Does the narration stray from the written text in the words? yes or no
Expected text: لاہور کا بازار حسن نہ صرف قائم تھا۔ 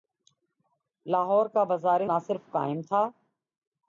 yes